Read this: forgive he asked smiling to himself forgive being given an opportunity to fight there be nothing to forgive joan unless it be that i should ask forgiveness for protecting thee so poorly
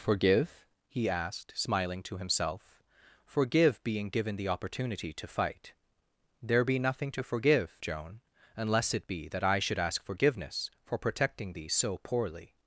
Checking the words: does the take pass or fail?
fail